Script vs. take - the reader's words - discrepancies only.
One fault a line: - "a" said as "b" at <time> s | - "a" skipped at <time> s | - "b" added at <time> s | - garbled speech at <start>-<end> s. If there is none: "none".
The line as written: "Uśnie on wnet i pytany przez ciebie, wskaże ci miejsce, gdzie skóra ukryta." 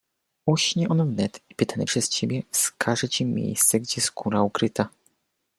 none